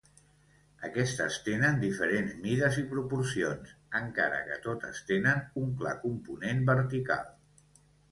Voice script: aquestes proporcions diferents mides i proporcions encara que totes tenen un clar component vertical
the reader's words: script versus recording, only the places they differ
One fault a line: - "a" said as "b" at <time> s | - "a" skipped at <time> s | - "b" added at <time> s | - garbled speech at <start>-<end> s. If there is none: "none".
- "proporcions" said as "tenen" at 1.5 s